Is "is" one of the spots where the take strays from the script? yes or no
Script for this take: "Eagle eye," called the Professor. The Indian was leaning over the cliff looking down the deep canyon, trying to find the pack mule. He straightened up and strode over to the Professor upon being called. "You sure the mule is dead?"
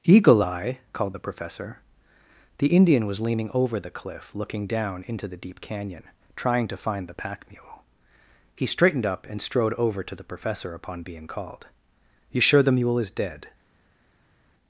no